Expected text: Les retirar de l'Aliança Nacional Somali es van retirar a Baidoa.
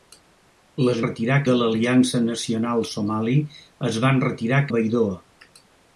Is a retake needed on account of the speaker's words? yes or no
no